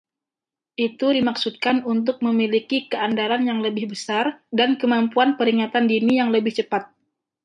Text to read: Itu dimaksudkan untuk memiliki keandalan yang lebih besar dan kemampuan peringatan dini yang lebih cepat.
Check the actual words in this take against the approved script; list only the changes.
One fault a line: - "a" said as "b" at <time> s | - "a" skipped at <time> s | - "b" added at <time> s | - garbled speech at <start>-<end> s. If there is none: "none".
none